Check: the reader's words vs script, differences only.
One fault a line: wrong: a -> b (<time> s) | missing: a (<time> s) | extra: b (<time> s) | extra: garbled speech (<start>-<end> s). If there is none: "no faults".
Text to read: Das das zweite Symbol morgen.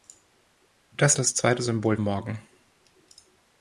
no faults